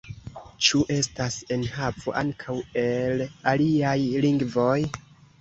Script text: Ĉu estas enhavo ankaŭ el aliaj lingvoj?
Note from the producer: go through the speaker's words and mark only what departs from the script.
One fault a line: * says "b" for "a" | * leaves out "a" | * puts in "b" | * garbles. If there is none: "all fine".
all fine